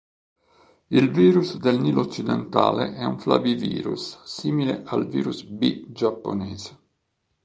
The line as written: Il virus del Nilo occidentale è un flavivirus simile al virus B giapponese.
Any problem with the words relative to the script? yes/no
no